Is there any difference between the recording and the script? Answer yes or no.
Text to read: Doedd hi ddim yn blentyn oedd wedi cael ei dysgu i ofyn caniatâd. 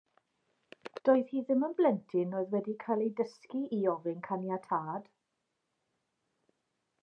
no